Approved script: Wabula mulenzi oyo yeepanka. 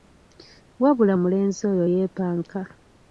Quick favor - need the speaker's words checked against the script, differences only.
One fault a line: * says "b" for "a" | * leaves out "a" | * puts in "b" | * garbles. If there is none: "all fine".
all fine